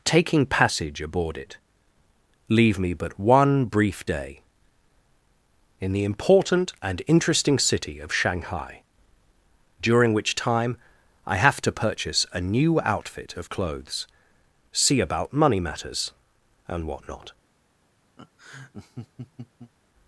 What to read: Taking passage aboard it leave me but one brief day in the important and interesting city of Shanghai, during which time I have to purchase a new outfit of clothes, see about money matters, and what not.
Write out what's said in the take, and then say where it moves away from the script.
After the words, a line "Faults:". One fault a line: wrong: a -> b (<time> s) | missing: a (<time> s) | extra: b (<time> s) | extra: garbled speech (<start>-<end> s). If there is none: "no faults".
Taking passage aboard it leave me but one brief day in the important and interesting city of Shanghai, during which time I have to purchase a new outfit of clothes, see about money matters, and what not.
Faults:
no faults